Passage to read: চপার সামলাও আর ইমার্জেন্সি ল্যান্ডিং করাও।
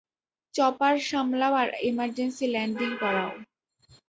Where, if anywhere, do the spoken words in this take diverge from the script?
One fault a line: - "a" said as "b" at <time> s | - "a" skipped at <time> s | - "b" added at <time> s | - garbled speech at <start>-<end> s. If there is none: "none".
none